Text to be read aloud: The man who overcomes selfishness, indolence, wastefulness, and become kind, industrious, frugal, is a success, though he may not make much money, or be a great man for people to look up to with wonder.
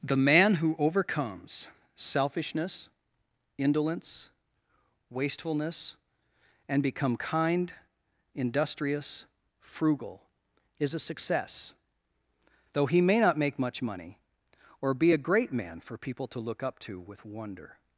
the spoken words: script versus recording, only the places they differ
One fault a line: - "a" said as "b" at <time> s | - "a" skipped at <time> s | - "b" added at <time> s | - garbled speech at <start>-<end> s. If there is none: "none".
none